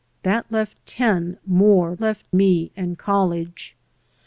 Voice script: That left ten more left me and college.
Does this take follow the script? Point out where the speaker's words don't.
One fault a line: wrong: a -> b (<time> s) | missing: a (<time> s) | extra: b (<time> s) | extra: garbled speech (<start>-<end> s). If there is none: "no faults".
no faults